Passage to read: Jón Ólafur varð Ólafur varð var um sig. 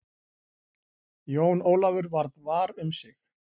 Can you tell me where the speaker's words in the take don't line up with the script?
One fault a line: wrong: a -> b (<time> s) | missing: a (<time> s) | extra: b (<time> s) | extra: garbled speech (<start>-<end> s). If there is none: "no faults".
missing: Ólafur varð (2.4 s)